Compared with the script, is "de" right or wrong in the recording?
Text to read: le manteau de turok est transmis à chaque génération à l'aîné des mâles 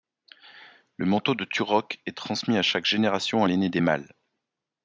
right